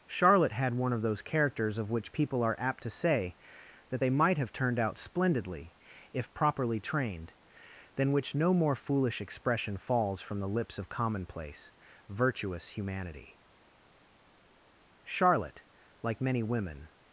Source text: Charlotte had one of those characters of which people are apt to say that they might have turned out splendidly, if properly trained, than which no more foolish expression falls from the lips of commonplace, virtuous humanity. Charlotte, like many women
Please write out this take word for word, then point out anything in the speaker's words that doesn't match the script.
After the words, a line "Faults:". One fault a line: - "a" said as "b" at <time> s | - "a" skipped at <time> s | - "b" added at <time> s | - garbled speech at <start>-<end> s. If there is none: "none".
Charlotte had one of those characters of which people are apt to say that they might have turned out splendidly, if properly trained, than which no more foolish expression falls from the lips of commonplace, virtuous humanity. Charlotte, like many women
Faults:
none